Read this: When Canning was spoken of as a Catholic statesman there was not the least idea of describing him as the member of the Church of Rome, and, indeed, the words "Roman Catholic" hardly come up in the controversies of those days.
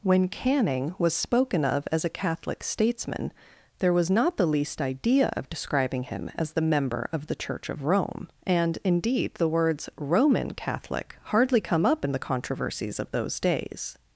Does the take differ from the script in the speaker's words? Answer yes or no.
no